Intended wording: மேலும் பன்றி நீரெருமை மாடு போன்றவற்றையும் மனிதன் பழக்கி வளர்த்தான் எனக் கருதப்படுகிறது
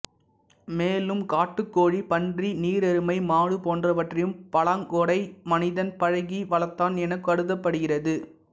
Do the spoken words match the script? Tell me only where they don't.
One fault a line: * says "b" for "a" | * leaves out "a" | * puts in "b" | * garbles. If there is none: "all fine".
* puts in "காட்டுக்கோழி"
* puts in "பலாங்கொடை"